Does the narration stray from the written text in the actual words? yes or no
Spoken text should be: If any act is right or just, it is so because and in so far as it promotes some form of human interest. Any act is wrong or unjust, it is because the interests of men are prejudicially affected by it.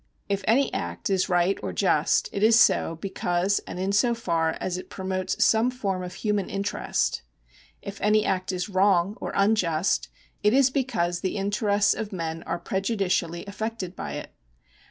yes